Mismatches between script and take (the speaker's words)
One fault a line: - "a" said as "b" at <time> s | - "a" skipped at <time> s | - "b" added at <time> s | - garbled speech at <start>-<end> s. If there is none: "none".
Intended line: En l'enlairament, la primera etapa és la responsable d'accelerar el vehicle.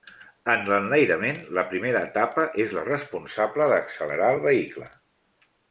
none